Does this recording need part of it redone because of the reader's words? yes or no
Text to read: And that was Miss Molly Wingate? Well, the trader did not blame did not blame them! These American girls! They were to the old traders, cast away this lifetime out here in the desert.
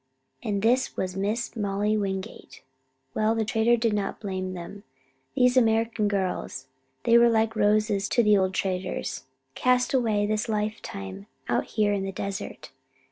yes